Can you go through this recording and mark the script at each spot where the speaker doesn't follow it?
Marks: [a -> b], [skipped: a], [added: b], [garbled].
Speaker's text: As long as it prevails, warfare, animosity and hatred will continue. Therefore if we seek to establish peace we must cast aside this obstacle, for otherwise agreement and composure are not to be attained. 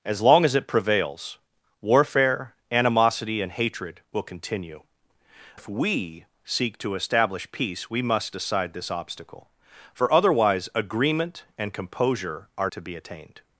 As long as it prevails, warfare, animosity and hatred will continue. [skipped: Therefore] if we seek to establish peace we must [skipped: cast] aside this obstacle, for otherwise agreement and composure are [skipped: not] to be attained.